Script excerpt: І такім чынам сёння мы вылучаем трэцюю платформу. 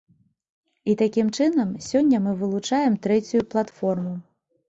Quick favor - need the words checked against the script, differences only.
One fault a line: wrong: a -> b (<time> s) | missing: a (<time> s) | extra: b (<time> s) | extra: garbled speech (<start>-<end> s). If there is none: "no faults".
no faults